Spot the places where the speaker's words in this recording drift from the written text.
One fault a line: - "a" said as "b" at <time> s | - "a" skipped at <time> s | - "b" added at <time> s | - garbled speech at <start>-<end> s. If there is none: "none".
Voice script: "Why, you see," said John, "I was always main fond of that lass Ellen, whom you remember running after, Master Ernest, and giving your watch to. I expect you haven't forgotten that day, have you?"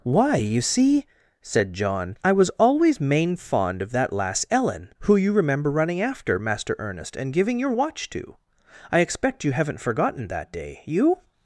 - "whom" said as "who" at 5.0 s
- "have" skipped at 10.8 s